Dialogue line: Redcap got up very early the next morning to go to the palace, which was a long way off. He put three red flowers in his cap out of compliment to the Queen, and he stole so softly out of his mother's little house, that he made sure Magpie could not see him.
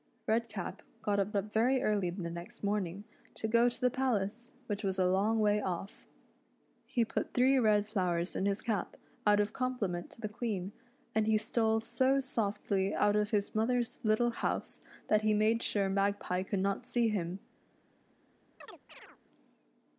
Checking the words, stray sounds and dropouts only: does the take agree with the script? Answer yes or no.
no